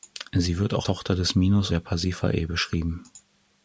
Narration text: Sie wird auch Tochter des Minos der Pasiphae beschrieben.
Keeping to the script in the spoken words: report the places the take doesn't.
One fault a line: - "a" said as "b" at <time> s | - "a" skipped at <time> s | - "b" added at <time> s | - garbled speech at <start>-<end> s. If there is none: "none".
none